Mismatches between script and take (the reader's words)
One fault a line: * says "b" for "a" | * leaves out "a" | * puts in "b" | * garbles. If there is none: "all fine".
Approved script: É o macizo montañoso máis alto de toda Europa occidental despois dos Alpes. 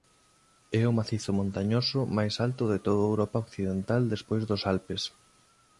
all fine